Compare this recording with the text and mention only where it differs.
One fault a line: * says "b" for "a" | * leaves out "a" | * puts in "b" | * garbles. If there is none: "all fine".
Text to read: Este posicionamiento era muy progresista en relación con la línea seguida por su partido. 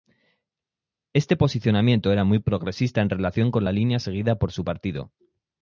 all fine